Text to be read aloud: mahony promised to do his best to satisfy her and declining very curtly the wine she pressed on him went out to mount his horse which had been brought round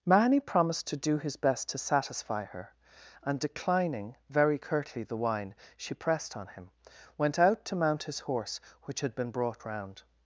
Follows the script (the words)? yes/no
yes